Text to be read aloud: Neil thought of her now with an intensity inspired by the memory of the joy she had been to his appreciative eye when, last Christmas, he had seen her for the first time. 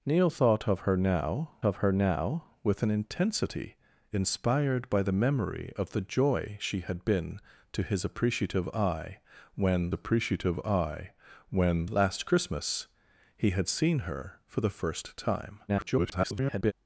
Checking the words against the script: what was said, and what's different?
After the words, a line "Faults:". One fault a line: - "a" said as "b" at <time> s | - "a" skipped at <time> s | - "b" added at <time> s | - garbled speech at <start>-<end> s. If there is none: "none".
Neil thought of her now of her now with an intensity inspired by the memory of the joy she had been to his appreciative eye when appreciative eye when, last Christmas, he had seen her for the first time. [garbled]
Faults:
- "of her now" added at 1.6 s
- "appreciative eye when" added at 9.9 s
- garbled speech at 15.7-16.7 s